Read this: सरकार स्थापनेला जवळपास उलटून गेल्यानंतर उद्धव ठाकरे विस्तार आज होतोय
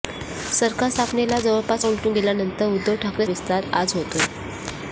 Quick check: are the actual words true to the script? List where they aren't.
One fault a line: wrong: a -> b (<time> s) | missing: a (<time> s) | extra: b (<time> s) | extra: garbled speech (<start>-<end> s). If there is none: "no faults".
no faults